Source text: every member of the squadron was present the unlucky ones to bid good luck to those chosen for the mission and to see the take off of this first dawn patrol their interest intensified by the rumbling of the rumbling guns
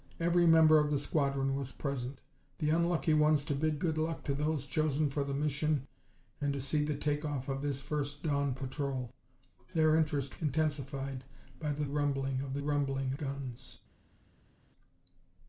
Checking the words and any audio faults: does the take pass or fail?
pass